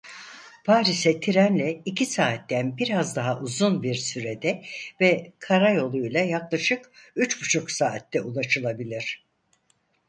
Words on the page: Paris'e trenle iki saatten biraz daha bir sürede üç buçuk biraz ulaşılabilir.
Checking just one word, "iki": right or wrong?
right